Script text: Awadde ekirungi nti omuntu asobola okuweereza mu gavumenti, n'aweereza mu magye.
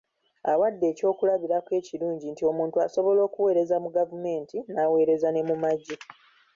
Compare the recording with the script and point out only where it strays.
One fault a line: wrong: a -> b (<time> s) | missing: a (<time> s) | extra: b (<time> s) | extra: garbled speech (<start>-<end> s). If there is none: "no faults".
extra: ekyokulabirako (0.9 s)
extra: ne (5.3 s)